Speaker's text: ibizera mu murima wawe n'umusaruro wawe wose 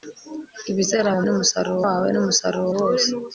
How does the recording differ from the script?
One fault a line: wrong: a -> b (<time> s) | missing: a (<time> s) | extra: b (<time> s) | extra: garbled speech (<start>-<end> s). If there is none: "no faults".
wrong: murima -> n'umusaruro (1.2 s)
missing: wawe (2.7 s)